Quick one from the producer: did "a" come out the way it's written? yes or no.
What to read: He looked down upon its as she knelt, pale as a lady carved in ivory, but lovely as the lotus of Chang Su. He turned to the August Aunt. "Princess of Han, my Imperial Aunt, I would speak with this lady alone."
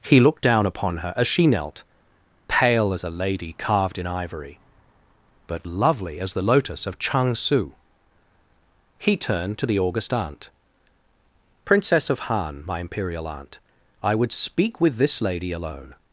yes